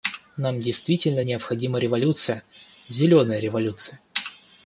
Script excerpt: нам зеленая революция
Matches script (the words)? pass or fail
fail